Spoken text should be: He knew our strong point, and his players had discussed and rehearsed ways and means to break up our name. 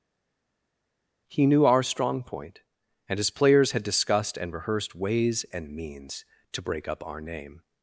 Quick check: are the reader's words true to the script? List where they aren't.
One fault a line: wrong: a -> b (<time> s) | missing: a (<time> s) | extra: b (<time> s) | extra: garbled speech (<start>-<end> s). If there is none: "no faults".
no faults